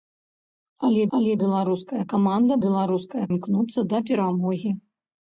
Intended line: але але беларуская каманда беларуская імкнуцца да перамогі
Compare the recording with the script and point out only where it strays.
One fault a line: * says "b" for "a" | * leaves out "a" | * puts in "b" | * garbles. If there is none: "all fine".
all fine